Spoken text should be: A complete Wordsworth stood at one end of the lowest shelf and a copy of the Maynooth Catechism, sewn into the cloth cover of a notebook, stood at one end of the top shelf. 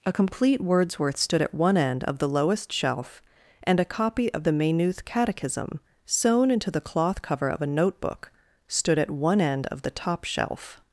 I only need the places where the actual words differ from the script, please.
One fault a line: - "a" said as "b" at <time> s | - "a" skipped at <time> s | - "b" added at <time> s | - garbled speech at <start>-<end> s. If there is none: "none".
none